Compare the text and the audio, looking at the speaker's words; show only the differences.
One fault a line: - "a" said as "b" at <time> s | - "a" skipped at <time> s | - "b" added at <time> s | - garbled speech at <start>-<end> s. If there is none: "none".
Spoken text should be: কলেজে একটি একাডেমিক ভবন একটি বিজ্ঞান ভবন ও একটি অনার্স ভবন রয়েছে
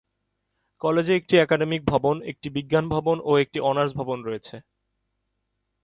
none